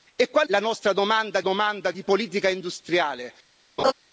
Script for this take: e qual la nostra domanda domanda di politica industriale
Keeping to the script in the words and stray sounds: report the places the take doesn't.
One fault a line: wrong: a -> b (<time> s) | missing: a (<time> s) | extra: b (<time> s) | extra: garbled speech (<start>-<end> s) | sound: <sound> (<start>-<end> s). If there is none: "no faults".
sound: laugh (3.8-3.9 s)